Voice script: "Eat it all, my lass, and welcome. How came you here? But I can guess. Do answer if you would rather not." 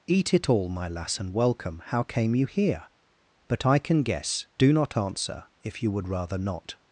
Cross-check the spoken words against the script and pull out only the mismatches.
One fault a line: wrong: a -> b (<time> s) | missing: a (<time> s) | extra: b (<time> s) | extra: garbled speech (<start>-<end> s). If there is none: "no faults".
extra: not (4.7 s)